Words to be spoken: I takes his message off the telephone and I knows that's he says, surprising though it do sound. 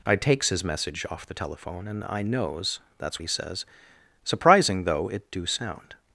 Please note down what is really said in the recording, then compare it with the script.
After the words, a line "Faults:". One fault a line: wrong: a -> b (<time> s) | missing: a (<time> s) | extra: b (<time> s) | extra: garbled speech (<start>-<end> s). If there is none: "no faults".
I takes his message off the telephone and I knows that's he says, surprising though it do sound.
Faults:
no faults